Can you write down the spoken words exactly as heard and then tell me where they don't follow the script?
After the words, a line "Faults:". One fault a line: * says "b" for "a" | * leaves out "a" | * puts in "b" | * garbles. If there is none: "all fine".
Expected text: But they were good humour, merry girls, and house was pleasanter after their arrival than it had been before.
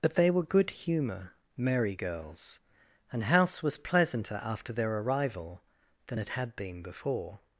But they were good humour, merry girls, and house was pleasanter after their arrival than it had been before.
Faults:
all fine